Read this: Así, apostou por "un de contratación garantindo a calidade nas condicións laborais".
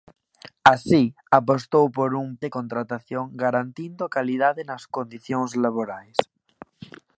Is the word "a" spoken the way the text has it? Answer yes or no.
yes